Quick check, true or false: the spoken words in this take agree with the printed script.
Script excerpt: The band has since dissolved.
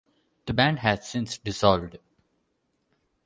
true